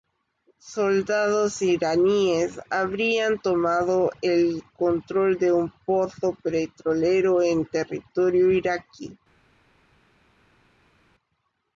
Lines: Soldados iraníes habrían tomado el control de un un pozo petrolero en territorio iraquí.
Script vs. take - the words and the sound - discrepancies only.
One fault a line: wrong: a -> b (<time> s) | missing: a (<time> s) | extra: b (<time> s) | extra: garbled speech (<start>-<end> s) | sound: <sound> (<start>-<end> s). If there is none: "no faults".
missing: un (5.7 s)